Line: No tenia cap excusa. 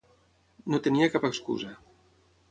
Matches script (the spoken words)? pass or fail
pass